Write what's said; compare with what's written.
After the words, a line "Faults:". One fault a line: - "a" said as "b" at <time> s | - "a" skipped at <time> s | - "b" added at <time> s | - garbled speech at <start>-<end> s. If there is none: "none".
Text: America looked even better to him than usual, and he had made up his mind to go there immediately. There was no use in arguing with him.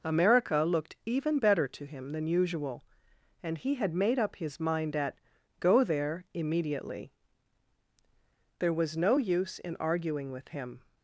America looked even better to him than usual, and he had made up his mind at go there immediately. There was no use in arguing with him.
Faults:
- "to" said as "at" at 4.9 s